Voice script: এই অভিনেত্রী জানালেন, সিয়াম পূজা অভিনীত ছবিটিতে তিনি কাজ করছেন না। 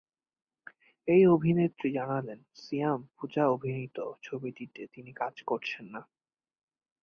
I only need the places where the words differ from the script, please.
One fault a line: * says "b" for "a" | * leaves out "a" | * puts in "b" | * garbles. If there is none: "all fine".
all fine